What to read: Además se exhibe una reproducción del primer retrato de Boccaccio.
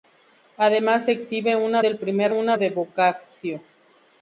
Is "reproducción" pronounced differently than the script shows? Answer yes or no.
yes